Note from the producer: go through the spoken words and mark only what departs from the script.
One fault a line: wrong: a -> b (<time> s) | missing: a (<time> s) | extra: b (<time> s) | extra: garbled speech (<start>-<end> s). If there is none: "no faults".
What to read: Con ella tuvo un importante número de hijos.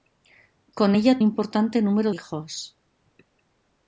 missing: tuvo un (1.2 s)
missing: de (2.1 s)